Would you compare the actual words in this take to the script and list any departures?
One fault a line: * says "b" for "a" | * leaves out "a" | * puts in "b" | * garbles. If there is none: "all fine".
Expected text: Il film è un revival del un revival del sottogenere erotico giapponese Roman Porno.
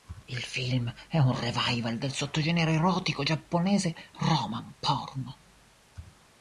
* leaves out "un revival del"